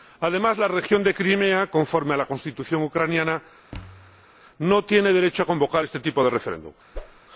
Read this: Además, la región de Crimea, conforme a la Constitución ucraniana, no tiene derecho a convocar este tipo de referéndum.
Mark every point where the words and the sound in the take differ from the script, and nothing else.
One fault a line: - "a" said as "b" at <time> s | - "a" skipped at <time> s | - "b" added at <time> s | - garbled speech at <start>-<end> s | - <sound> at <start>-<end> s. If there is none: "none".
- thud at 3.7-4.3 s
- whoosh at 6.9-7.2 s